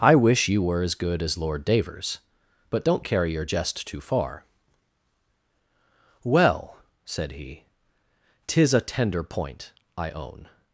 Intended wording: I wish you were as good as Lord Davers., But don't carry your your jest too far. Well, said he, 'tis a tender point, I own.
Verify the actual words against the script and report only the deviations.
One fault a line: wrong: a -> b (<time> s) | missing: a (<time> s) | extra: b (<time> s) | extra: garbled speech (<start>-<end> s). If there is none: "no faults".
missing: your (3.5 s)